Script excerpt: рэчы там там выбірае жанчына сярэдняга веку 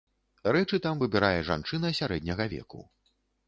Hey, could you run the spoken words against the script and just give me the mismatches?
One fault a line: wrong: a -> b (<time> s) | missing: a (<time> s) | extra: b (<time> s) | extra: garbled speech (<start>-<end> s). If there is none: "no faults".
missing: там (1.0 s)